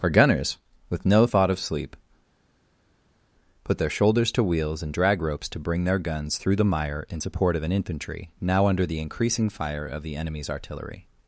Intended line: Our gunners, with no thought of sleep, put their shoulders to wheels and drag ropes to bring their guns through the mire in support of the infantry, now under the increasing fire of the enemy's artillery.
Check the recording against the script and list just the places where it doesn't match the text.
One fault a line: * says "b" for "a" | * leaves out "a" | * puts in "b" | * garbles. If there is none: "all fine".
* says "an" for "the"